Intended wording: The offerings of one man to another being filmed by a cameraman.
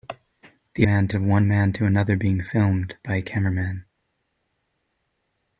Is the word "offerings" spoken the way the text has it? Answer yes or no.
no